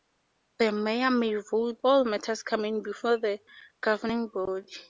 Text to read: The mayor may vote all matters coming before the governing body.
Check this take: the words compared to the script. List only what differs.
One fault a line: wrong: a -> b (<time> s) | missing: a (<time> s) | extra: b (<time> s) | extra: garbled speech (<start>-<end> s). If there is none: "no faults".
no faults